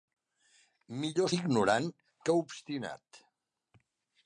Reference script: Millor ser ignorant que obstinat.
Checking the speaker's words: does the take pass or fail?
fail